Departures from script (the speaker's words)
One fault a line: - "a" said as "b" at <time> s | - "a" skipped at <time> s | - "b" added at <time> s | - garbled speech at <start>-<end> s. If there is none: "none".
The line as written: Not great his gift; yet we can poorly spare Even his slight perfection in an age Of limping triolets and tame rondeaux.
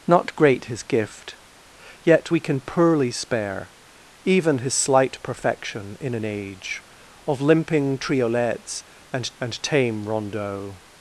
- "and" added at 9.4 s